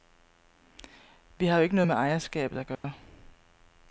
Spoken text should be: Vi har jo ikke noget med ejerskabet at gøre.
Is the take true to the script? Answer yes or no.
yes